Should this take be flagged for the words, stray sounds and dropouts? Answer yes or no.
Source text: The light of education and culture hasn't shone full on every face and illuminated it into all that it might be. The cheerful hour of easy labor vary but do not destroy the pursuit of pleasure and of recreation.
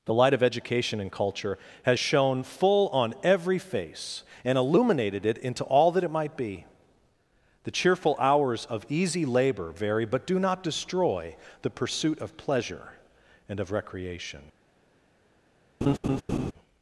yes